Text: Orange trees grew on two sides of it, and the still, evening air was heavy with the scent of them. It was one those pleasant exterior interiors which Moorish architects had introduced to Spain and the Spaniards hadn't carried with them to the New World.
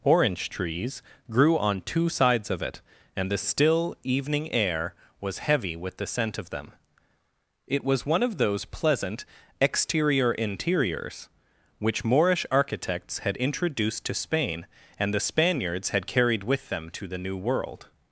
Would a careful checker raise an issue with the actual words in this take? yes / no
yes